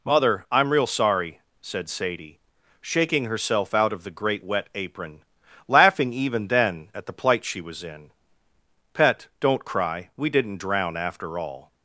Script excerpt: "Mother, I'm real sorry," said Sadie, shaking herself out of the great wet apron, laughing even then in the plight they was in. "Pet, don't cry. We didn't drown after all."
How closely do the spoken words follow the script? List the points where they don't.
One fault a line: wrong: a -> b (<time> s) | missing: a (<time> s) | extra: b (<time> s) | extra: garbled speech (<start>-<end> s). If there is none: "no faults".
wrong: in -> at (6.9 s)
wrong: they -> she (7.4 s)